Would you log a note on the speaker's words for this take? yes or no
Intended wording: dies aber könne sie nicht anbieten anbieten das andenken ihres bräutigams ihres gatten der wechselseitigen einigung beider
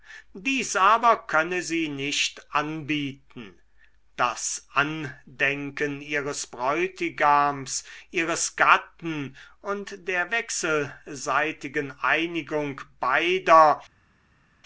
yes